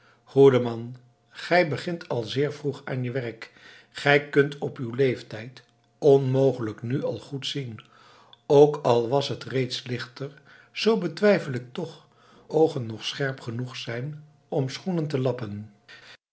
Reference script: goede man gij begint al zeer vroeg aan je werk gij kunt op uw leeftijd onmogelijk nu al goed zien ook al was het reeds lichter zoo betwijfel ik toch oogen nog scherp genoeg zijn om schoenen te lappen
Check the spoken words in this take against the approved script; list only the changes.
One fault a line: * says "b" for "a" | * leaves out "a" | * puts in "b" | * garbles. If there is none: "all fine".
all fine